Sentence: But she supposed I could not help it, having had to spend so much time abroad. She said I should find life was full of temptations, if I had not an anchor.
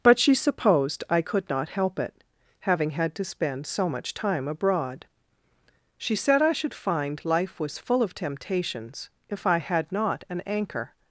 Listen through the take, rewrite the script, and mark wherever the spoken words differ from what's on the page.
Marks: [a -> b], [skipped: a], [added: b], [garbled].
But she supposed I could not help it, having had to spend so much time abroad. She said I should find life was full of temptations, if I had not an anchor.